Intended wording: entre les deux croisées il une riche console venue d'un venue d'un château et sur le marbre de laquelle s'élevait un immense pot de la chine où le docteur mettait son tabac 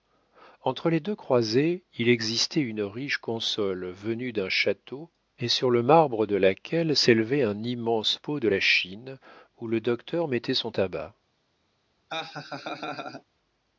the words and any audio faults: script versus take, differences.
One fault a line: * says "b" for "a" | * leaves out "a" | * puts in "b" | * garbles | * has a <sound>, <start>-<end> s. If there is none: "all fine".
* puts in "existait"
* leaves out "venue d'un"
* has a laugh, 12.1-13.2 s